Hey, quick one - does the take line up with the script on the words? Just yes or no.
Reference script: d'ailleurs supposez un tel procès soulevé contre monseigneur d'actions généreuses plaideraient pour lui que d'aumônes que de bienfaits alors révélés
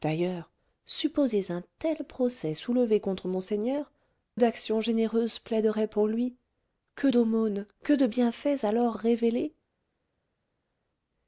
yes